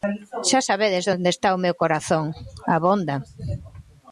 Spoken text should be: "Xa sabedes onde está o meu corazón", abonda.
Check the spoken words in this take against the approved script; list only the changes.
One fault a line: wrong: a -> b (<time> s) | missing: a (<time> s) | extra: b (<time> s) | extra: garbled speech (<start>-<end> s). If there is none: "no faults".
no faults